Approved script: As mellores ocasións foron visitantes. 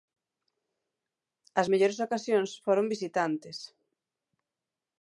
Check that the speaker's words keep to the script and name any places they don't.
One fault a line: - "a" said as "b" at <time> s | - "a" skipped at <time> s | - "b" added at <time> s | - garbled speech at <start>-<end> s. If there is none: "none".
none